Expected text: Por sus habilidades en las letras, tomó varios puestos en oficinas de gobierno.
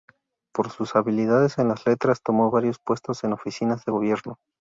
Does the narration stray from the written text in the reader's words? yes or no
no